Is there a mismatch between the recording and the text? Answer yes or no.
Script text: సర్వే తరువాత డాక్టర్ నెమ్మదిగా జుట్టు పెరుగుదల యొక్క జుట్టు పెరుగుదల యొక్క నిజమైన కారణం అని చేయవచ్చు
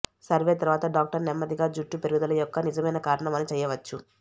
yes